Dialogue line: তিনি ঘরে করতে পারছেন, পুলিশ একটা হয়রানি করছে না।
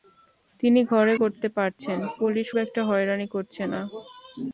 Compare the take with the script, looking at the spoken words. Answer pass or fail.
pass